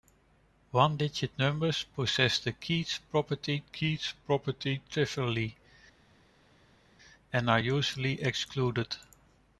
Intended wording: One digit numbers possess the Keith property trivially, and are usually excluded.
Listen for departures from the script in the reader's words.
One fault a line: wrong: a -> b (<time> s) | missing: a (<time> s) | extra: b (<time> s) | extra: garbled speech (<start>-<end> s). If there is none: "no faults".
extra: Keith property (3.6 s)